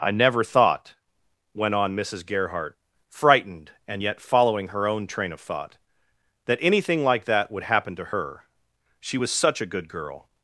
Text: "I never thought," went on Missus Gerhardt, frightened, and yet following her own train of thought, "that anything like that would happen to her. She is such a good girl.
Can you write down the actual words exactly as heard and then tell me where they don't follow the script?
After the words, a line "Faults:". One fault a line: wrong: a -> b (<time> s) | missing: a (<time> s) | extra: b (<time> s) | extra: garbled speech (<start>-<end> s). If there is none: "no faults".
"I never thought," went on Missus Gerhardt, frightened, and yet following her own train of thought, "that anything like that would happen to her. She was such a good girl.
Faults:
wrong: is -> was (9.1 s)